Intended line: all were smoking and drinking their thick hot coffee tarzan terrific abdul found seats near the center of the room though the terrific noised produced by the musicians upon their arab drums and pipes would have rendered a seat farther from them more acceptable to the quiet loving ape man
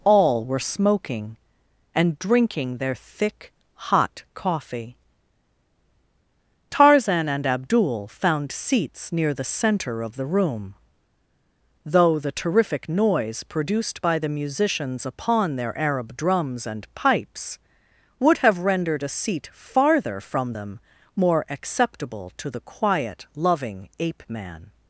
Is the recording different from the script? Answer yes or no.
yes